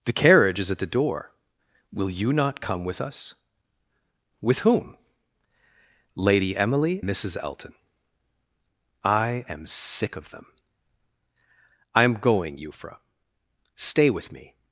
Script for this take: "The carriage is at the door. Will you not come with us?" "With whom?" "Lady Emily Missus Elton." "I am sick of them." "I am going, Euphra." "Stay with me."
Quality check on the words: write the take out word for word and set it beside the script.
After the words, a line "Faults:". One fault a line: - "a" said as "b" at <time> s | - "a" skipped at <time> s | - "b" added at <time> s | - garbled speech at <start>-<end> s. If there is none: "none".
"The carriage is at the door. Will you not come with us?" "With whom?" "Lady Emily Missus Elton." "I am sick of them." "I am going, Euphra." "Stay with me."
Faults:
none